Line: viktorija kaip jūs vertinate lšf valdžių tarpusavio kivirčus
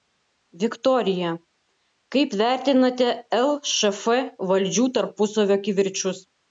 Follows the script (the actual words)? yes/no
no